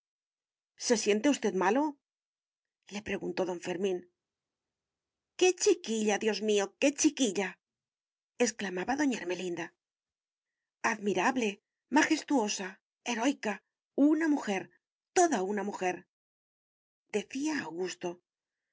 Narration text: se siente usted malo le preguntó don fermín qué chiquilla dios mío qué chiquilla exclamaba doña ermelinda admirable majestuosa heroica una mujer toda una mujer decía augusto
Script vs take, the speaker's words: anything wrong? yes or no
no